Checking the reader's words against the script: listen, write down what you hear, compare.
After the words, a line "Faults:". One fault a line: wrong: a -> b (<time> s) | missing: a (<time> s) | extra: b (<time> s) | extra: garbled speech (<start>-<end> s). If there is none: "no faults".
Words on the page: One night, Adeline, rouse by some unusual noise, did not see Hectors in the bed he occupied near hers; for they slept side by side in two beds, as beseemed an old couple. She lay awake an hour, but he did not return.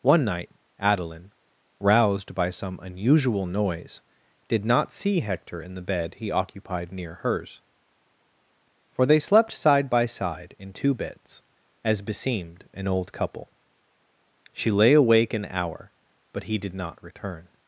One night, Adeline, roused by some unusual noise, did not see Hector in the bed he occupied near hers; for they slept side by side in two beds, as beseemed an old couple. She lay awake an hour, but he did not return.
Faults:
wrong: rouse -> roused (1.8 s)
wrong: Hectors -> Hector (5.2 s)